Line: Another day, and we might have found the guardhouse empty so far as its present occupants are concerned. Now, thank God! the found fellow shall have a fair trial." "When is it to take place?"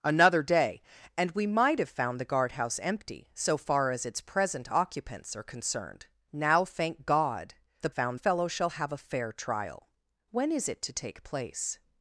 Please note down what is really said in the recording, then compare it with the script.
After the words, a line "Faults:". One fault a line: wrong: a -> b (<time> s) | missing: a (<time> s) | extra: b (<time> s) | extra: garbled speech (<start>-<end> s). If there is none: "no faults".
Another day, and we might have found the guardhouse empty so far as its present occupants are concerned. Now, thank God! the found fellow shall have a fair trial." "When is it to take place?"
Faults:
no faults